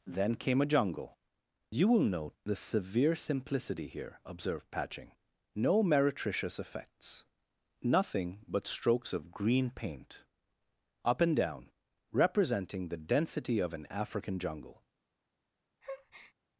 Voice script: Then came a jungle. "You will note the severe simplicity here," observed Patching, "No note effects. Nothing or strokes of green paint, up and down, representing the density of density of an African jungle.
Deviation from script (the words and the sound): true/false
true